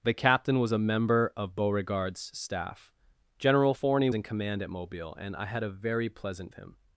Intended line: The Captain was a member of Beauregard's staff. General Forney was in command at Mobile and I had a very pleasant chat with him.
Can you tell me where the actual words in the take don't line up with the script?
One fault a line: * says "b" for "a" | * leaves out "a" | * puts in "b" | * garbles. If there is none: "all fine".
* leaves out "was"
* leaves out "chat with"